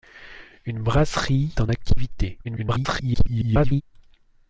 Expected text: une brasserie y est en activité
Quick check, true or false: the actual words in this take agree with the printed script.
false